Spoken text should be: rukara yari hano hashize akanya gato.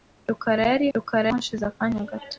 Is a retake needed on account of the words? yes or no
yes